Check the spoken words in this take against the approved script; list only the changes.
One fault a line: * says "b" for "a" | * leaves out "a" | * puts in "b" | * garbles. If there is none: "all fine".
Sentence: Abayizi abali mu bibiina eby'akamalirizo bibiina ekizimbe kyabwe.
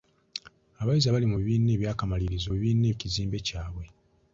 all fine